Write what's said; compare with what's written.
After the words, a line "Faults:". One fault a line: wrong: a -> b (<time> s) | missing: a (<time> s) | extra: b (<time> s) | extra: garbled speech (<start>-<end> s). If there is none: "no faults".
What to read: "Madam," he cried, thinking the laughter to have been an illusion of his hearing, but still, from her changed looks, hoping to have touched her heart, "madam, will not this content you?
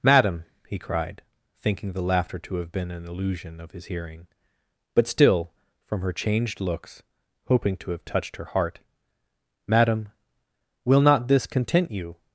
"Madam," he cried, thinking the laughter to have been an illusion of his hearing, but still, from her changed looks, hoping to have touched her heart, "madam, will not this content you?
Faults:
no faults